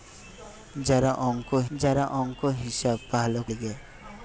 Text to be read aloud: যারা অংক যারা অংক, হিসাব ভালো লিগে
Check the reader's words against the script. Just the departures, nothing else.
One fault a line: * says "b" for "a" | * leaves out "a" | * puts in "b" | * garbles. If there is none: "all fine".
all fine